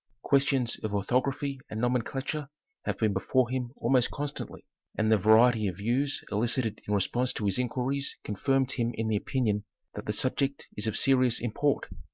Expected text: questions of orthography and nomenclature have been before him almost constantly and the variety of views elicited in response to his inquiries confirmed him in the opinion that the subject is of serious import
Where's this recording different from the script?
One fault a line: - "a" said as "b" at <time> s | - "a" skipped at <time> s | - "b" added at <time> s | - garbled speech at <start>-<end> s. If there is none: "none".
none